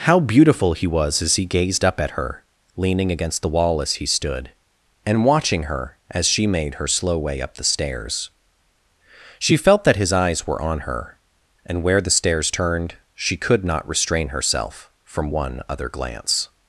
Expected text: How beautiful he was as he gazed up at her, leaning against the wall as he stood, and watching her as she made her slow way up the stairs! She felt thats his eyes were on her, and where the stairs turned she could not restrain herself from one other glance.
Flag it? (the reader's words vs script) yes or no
yes